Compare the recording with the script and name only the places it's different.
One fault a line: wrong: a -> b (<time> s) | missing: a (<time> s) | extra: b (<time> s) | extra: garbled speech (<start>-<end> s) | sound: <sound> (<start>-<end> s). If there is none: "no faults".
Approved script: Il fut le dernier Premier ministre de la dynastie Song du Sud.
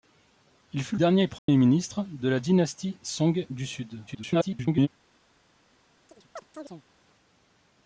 missing: le (0.9 s)
sound: dropout (1.4-1.5 s)
extra: garbled speech (4.1-4.9 s)
sound: chirp (6.1-6.8 s)